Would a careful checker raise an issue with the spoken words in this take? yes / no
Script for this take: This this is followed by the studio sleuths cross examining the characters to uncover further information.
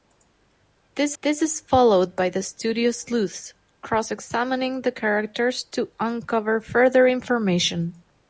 no